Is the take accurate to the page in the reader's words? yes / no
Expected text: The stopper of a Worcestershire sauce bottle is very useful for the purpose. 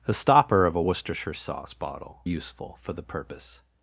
no